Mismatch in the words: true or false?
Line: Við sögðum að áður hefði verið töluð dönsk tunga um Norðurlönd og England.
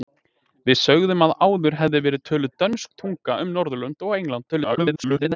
true